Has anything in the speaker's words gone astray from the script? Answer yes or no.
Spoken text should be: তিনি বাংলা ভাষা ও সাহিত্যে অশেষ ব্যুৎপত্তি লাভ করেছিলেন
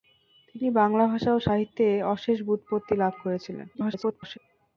yes